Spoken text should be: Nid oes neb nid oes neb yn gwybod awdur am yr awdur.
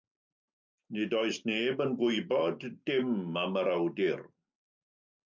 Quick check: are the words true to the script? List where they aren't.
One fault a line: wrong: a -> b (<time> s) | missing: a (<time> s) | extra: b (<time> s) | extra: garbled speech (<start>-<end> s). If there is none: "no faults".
missing: nid oes neb (1.8 s)
wrong: awdur -> dim (2.9 s)